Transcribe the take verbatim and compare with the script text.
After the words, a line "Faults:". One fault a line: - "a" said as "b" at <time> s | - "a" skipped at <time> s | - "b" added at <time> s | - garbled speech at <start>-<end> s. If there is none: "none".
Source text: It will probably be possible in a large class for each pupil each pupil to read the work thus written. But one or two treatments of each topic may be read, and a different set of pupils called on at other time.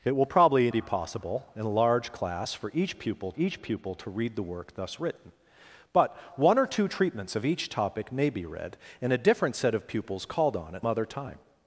It will probably be possible in a large class for each pupil each pupil to read the work thus written. But one or two treatments of each topic may be read, and a different set of pupils called on at other time.
Faults:
none